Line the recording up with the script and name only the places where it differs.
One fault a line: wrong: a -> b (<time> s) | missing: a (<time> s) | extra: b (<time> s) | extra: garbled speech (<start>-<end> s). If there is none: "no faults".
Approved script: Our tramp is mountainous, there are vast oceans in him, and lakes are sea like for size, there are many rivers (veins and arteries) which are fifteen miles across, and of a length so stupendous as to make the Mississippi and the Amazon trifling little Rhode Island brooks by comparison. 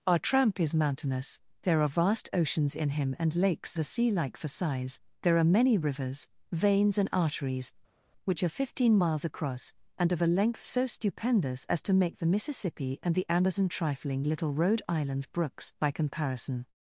no faults